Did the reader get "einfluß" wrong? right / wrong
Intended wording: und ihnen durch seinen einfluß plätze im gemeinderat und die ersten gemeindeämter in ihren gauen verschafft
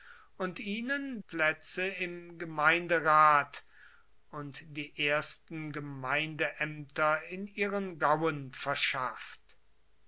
wrong